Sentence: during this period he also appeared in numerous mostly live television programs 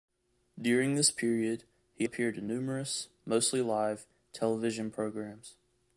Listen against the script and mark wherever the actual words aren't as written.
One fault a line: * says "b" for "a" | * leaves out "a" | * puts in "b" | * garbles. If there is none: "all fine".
* leaves out "also"